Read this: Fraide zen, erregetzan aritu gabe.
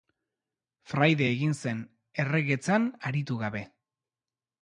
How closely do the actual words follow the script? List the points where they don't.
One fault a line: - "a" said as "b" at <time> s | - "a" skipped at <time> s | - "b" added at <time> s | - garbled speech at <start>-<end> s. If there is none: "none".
- "egin" added at 1.3 s